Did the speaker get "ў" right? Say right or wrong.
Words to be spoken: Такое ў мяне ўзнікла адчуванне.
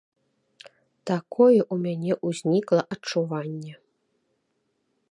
right